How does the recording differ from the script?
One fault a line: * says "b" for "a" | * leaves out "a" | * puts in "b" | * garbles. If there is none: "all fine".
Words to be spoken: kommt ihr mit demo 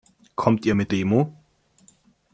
all fine